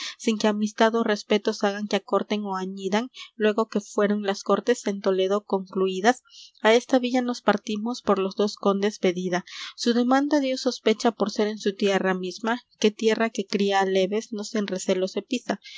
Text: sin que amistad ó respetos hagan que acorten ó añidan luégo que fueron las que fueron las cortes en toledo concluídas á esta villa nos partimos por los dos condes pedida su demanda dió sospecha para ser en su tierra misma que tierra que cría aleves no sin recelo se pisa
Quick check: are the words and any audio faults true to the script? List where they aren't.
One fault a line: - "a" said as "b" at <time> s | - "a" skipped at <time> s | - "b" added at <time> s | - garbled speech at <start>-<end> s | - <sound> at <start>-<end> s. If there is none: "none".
- "que fueron las" skipped at 4.4 s
- "para" said as "por" at 11.1 s